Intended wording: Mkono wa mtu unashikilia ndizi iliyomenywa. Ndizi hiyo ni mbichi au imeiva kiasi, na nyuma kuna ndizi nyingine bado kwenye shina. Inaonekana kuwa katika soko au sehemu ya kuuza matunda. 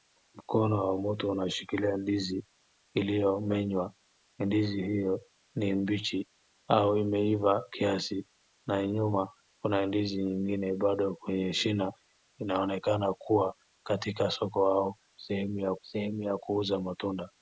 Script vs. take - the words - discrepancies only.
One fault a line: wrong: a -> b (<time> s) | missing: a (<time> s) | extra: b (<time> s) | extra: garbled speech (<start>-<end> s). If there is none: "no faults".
extra: sehemu ya (15.8 s)